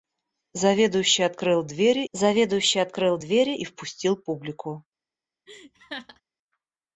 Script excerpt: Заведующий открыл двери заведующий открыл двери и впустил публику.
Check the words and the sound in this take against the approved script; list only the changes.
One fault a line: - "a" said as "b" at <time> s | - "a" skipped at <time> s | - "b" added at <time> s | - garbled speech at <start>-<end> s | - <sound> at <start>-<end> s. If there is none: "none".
- laugh at 5.5-6.2 s